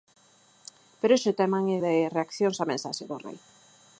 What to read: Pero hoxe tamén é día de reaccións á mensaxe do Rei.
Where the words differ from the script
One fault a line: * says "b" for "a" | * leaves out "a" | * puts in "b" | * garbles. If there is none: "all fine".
* leaves out "día"